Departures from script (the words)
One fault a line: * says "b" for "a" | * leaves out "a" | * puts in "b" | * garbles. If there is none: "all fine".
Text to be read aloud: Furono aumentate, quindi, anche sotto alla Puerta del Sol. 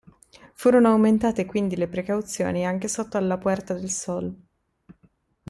* puts in "le precauzioni"